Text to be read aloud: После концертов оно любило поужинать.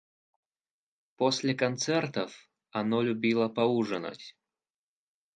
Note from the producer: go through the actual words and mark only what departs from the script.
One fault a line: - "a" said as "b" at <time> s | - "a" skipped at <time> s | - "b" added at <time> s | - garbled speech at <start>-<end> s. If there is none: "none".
none